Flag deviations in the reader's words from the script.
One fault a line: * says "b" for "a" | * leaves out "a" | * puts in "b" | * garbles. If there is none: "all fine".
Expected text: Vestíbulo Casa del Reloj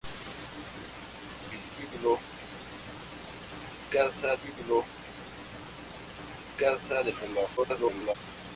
* puts in "vestíbulo Casa"
* garbles